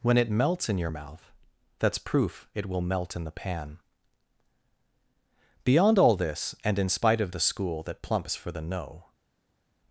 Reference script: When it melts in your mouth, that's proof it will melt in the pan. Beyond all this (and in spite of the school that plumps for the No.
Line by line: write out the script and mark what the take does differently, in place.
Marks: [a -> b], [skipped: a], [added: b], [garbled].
When it melts in your mouth, that's proof it will melt in the pan. Beyond all this (and in spite of the school that plumps for the No.